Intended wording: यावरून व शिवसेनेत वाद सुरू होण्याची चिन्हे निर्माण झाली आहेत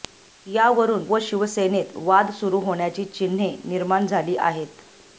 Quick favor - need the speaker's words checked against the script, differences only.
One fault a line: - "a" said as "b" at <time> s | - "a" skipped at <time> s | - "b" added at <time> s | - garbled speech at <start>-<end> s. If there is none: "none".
none